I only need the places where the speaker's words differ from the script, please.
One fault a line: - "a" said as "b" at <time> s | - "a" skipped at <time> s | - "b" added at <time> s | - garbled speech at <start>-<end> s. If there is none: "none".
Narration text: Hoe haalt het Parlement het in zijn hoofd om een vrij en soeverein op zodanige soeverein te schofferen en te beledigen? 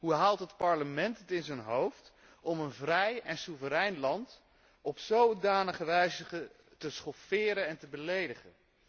- "land" added at 4.0 s
- "soeverein" said as "wijze" at 5.8 s